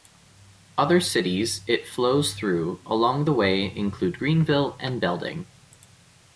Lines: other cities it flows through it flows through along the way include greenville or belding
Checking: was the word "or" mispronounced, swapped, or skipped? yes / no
yes